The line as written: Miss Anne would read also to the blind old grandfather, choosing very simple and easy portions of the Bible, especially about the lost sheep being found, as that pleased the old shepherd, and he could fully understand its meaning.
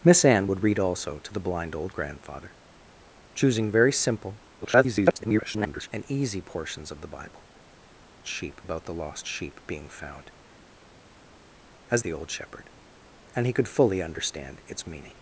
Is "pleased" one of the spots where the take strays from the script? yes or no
yes